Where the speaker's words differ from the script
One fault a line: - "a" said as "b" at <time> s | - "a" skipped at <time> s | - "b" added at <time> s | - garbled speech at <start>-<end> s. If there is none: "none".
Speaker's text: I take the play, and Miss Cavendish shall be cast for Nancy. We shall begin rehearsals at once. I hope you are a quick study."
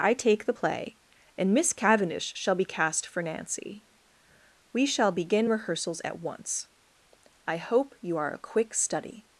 none